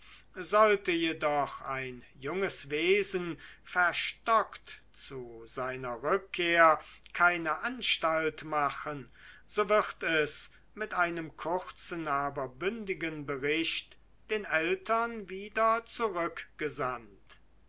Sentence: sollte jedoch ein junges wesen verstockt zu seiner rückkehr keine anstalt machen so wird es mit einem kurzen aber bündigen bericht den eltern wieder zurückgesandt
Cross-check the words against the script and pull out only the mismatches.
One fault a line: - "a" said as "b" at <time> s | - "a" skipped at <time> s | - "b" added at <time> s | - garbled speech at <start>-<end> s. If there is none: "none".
none